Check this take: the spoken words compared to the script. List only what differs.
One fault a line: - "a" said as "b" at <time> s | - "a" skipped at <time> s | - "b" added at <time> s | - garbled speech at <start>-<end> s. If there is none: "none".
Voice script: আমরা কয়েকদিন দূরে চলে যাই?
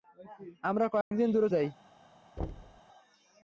- "চলে" skipped at 1.5 s